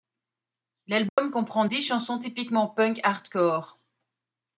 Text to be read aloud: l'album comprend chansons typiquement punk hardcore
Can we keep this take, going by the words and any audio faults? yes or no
no